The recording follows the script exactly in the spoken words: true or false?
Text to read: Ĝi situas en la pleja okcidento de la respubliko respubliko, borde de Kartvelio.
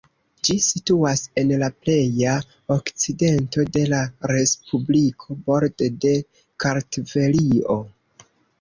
false